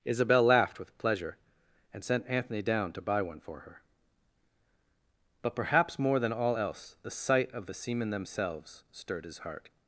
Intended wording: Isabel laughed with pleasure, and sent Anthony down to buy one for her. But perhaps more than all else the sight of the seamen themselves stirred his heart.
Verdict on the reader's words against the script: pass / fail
pass